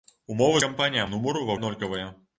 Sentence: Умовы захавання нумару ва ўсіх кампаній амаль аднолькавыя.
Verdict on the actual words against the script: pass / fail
fail